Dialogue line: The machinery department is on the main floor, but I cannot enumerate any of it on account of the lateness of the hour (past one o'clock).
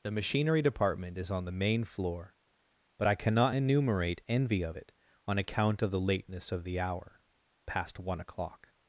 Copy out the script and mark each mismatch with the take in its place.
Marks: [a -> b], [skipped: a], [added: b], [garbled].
The machinery department is on the main floor, but I cannot enumerate [any -> envy] of it on account of the lateness of the hour (past one o'clock).